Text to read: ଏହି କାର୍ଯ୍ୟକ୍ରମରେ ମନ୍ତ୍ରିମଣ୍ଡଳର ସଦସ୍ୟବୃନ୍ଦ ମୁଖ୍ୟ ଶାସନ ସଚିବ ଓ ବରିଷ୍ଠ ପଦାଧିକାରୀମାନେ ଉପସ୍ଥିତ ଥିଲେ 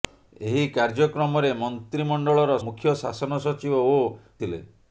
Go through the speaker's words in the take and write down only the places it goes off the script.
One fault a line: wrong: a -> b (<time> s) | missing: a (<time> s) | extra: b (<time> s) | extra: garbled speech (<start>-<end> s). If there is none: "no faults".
missing: ସଦସ୍ୟବୃନ୍ଦ (2.5 s)
missing: ବରିଷ୍ଠ ପଦାଧିକାରୀମାନେ ଉପସ୍ଥିତ (4.0 s)